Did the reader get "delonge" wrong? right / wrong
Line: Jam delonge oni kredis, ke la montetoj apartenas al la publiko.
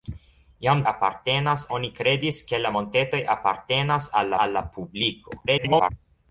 wrong